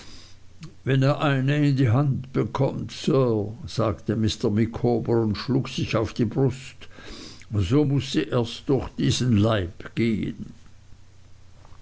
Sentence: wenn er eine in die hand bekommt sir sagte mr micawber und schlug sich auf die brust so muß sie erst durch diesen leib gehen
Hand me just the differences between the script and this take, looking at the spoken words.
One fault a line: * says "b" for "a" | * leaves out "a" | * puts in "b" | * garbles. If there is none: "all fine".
all fine